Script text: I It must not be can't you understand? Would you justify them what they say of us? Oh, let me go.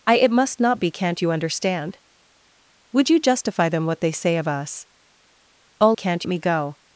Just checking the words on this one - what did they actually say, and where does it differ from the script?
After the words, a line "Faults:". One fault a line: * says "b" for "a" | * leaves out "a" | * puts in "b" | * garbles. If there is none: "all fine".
I It must not be can't you understand? Would you justify them what they say of us? Oh, can't me go.
Faults:
* says "can't" for "let"